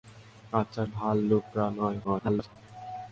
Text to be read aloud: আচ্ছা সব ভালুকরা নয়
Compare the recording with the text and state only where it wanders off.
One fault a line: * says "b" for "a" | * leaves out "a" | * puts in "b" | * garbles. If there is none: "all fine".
* leaves out "সব"
* garbles